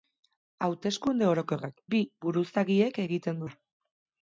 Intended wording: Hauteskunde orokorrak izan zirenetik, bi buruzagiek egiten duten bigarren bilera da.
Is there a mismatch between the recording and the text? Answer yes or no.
yes